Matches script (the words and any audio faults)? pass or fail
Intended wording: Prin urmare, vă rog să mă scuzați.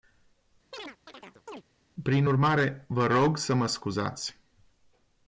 fail